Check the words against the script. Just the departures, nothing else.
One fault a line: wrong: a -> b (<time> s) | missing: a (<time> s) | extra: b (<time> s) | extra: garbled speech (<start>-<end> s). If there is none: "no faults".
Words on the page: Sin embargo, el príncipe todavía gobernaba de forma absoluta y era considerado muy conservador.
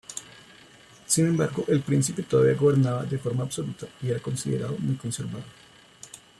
no faults